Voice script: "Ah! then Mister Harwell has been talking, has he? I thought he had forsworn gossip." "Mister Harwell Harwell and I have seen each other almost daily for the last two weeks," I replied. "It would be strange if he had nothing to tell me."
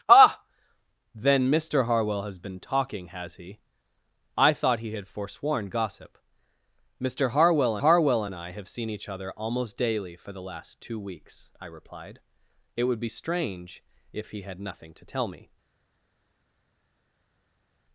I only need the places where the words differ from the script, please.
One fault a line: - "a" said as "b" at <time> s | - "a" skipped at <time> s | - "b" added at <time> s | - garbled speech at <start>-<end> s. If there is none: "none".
none